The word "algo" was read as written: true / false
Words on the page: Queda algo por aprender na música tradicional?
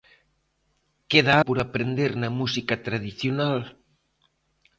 false